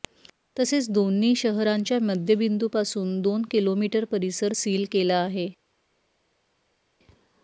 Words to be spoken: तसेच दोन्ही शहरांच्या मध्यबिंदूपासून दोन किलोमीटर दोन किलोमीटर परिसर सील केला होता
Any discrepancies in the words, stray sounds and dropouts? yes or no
yes